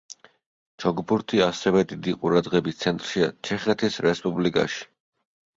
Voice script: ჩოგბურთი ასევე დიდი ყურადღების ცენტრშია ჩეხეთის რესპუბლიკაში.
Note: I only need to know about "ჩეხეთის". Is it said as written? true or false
true